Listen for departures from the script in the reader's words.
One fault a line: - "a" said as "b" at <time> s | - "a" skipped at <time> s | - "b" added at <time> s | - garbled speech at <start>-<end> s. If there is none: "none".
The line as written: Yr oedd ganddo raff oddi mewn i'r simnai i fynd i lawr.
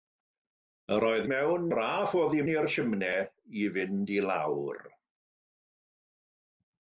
- "ganddo" said as "mewn" at 1.3 s
- "mewn" skipped at 2.4 s